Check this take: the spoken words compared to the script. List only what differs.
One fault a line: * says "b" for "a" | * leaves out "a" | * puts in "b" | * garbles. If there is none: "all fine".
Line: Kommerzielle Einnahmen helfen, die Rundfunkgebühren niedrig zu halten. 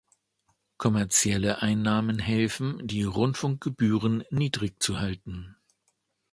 all fine